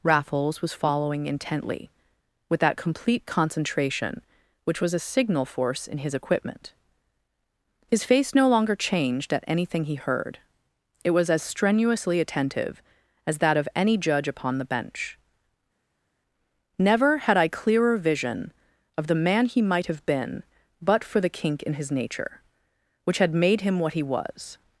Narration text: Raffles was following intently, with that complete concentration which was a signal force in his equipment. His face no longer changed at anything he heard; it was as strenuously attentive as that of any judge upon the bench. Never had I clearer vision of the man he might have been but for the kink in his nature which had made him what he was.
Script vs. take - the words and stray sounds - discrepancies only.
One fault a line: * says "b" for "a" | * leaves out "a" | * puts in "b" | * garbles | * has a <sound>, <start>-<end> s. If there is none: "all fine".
all fine